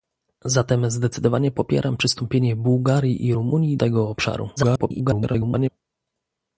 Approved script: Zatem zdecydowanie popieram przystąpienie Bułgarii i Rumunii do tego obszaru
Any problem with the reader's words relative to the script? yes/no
yes